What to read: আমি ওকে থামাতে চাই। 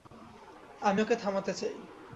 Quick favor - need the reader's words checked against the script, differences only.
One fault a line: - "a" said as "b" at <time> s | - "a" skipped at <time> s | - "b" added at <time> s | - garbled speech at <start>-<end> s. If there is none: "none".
none